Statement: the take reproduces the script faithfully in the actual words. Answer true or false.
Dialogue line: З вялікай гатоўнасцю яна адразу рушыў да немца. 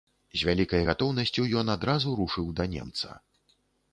false